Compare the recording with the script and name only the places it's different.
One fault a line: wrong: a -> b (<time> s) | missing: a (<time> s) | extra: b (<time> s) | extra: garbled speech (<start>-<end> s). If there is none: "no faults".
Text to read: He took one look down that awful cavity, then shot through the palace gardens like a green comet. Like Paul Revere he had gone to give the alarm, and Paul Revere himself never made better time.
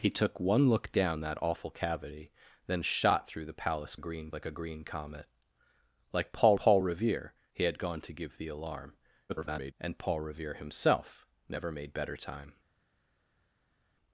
wrong: gardens -> green (4.0 s)
extra: Paul (6.5 s)
extra: garbled speech (9.3-9.7 s)